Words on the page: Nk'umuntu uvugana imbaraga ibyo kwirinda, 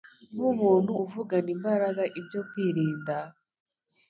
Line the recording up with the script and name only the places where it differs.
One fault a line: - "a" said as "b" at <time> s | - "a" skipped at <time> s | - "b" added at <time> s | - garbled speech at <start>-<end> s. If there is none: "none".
none